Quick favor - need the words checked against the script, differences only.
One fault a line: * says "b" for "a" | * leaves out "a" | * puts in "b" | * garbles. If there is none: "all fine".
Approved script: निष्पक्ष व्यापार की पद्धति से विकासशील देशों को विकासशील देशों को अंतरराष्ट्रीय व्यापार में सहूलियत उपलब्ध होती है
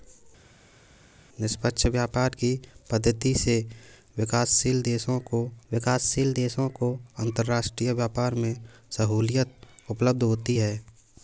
all fine